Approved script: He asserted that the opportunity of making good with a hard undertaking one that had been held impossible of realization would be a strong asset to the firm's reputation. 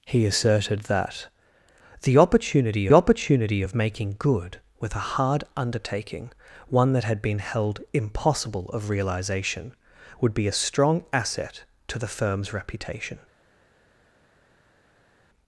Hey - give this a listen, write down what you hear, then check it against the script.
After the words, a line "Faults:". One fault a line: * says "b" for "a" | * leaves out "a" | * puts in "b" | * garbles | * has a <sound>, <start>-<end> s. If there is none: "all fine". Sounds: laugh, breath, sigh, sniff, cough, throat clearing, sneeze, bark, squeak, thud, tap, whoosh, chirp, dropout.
He asserted that the opportunity opportunity of making good with a hard undertaking one that had been held impossible of realization would be a strong asset to the firm's reputation.
Faults:
* puts in "opportunity"